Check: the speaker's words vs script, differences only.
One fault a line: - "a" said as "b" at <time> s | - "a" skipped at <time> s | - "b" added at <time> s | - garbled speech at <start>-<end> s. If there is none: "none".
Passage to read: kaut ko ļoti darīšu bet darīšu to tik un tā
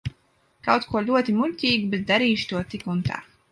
- "darīšu" said as "muļķīgu" at 1.4 s